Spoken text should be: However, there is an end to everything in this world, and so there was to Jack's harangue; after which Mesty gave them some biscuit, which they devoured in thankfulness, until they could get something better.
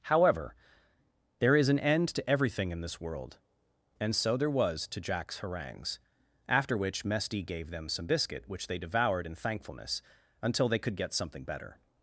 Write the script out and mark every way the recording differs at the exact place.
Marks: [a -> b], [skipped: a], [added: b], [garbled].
However, there is an end to everything in this world, and so there was to Jack's [harangue; -> harangues] after which Mesty gave them some biscuit, which they devoured in thankfulness, until they could get something better.